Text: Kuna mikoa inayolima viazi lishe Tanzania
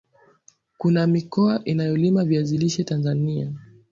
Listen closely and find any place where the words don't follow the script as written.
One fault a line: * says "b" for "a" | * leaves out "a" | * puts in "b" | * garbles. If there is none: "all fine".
all fine